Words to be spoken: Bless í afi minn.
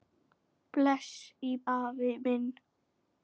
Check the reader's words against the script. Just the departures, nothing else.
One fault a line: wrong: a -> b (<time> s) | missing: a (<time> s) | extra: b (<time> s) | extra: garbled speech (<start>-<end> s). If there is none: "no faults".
no faults